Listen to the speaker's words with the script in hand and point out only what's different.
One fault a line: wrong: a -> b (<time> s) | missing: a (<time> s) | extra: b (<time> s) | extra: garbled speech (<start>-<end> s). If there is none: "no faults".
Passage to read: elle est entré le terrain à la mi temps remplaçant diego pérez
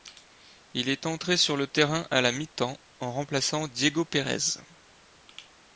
wrong: elle -> il (0.7 s)
extra: sur (1.4 s)
extra: en (3.0 s)